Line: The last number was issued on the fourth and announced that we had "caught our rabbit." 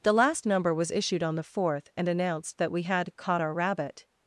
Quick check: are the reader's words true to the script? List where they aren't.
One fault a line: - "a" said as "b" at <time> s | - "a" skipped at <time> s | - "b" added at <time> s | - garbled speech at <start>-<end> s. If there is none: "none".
none